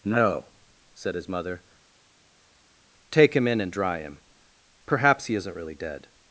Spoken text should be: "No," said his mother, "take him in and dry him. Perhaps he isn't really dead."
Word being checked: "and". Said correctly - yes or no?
yes